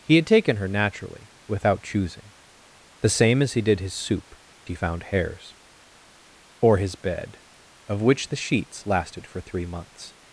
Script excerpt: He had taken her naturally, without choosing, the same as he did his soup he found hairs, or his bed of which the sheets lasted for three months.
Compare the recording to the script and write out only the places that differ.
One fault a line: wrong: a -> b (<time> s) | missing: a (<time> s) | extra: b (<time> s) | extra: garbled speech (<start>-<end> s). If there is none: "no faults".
no faults